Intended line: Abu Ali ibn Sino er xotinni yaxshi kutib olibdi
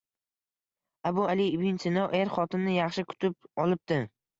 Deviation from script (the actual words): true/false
false